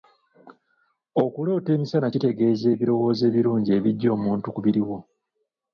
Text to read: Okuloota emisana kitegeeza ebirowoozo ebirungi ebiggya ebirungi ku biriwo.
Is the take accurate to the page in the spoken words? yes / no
no